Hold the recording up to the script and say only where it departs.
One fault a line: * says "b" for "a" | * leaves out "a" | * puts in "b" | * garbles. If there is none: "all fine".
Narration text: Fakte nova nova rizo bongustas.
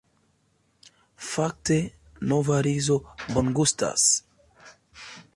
* leaves out "nova"